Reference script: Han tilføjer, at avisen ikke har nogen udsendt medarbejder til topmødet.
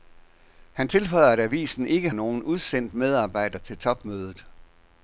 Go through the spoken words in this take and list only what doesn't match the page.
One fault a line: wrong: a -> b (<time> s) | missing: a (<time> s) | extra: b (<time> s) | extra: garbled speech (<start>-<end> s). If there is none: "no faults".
missing: har (2.1 s)